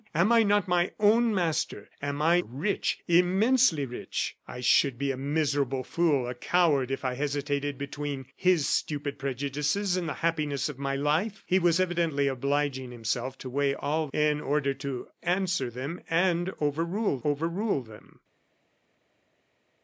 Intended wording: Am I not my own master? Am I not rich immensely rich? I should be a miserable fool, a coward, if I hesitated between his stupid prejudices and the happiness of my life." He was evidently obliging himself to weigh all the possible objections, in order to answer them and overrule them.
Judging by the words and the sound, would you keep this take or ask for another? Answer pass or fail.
fail